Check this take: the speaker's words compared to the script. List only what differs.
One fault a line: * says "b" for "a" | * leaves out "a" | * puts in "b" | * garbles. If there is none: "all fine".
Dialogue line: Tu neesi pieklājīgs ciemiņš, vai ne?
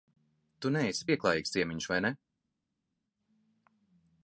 all fine